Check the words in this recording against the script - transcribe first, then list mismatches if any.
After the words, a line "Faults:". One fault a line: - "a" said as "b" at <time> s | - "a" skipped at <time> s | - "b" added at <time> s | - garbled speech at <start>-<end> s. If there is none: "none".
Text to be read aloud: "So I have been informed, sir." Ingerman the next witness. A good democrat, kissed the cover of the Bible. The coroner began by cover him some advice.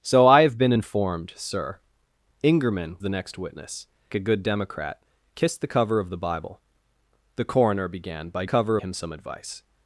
"So I have been informed, sir." Ingerman the next witness. A good democrat, kissed the cover of the Bible. The coroner began by cover him some advice.
Faults:
none